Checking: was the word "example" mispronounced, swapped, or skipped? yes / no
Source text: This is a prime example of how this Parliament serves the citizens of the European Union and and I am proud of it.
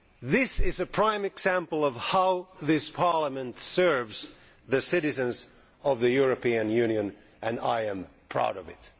no